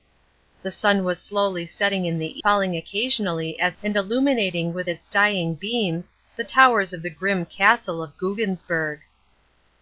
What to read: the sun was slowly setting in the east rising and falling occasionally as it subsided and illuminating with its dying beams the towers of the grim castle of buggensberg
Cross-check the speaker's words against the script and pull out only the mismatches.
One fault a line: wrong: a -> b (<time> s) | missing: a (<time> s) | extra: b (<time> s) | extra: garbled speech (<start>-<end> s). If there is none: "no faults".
missing: east rising and (2.4 s)
missing: it subsided (3.8 s)